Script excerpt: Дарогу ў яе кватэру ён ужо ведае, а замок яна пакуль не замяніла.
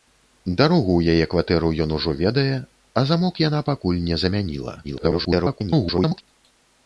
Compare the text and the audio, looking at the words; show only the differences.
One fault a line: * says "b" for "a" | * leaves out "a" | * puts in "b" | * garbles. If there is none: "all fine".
* garbles